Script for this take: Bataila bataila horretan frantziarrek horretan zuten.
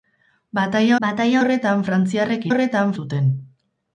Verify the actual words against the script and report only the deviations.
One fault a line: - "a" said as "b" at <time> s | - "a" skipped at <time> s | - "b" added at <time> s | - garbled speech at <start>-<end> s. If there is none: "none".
none